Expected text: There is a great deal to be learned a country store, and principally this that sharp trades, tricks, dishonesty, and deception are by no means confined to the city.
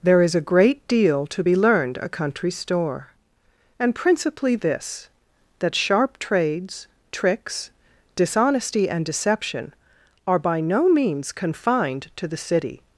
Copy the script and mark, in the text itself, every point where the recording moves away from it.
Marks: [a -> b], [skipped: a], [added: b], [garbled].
There is a great deal to be learned a country store, and principally this that sharp trades, tricks, dishonesty, and deception are by no means confined to the city.